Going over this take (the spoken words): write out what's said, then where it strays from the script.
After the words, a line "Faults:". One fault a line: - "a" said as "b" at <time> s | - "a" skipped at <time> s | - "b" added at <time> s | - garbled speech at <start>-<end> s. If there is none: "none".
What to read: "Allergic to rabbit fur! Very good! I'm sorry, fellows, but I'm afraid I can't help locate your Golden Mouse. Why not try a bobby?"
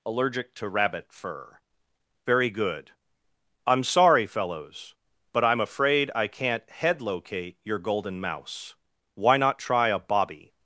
"Allergic to rabbit fur! Very good! I'm sorry, fellows, but I'm afraid I can't head locate your Golden Mouse. Why not try a bobby?"
Faults:
- "help" said as "head" at 6.7 s